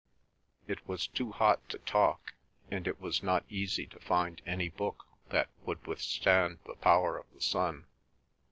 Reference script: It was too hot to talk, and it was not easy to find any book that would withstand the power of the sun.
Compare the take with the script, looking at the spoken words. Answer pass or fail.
pass